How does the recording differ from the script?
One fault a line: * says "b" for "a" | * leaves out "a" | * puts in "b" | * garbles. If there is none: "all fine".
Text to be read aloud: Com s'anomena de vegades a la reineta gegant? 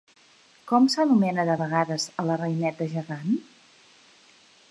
all fine